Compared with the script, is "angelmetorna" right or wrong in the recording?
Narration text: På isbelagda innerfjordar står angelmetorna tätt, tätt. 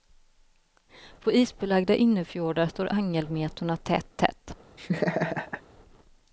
right